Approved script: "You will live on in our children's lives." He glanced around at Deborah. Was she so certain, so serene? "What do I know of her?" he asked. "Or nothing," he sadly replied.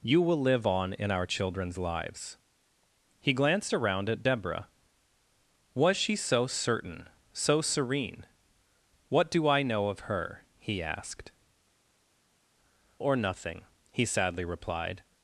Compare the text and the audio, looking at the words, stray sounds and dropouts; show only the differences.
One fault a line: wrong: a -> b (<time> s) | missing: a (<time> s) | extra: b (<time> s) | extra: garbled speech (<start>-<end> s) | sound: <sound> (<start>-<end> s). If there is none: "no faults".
no faults